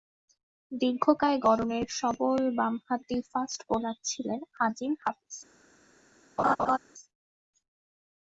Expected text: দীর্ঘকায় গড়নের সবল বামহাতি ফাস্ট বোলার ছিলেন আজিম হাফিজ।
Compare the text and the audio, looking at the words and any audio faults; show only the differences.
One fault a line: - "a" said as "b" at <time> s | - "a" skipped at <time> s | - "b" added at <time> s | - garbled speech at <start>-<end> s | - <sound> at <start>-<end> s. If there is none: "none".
- laugh at 6.4-6.8 s